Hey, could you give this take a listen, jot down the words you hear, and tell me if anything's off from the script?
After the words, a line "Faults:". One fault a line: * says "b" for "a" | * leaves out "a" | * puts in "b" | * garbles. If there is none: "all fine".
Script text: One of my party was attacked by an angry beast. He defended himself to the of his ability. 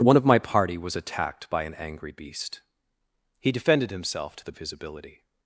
One of my party was attacked by an angry beast. He defended himself to the of his ability.
Faults:
all fine